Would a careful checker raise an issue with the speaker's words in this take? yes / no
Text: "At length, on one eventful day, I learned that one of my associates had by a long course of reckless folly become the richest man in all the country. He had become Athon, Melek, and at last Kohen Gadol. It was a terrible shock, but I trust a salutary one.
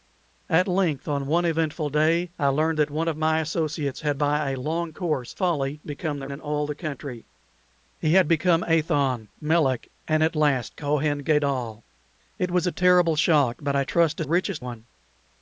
yes